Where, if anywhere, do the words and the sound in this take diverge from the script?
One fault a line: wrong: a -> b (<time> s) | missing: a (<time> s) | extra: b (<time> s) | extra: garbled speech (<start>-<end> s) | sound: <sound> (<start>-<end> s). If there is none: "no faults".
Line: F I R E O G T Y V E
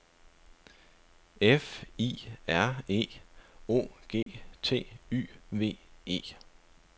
sound: dropout (4.2-4.3 s)